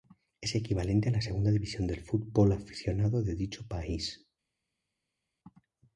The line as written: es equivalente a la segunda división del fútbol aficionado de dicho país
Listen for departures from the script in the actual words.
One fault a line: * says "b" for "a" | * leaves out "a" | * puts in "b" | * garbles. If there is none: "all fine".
all fine